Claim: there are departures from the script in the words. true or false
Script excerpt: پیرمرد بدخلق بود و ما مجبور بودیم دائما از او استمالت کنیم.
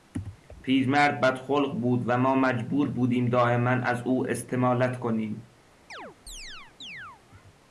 false